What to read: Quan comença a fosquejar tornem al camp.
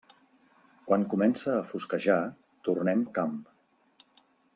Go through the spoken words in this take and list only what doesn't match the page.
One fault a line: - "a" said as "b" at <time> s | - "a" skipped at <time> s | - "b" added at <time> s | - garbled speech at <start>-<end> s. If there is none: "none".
none